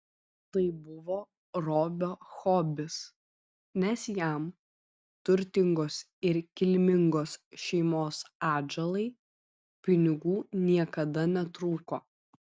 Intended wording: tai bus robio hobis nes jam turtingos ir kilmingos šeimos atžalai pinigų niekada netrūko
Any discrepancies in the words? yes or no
yes